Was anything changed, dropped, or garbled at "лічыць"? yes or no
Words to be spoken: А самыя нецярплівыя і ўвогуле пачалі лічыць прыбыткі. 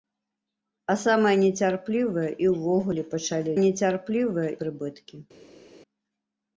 yes